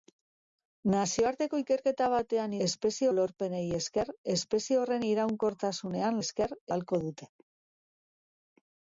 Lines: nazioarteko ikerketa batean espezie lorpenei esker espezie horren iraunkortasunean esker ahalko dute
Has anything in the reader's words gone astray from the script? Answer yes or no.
no